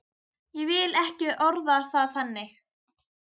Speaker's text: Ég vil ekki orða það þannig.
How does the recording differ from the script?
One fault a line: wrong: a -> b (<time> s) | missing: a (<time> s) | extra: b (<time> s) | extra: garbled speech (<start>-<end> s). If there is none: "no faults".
no faults